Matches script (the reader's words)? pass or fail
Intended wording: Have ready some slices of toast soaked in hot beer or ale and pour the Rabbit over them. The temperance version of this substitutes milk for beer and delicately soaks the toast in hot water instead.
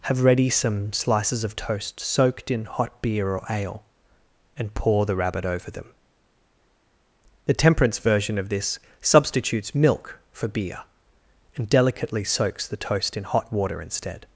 pass